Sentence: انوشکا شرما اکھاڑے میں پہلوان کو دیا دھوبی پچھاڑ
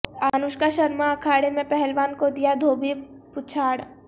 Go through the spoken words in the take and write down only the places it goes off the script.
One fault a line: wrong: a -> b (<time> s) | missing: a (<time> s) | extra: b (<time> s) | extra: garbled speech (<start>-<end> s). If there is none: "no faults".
no faults